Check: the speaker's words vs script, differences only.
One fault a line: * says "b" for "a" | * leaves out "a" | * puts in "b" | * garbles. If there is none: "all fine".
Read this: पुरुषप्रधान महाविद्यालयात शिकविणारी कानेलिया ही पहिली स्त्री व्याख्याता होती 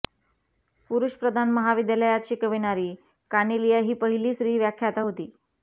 all fine